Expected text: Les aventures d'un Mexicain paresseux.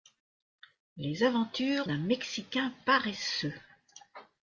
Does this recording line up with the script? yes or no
yes